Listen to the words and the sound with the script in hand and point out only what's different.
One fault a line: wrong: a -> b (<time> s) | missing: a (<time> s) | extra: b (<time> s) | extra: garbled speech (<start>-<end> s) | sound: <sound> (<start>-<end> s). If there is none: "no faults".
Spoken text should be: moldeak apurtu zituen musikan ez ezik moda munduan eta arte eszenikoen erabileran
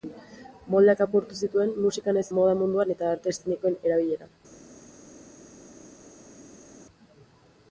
missing: ezik (2.2 s)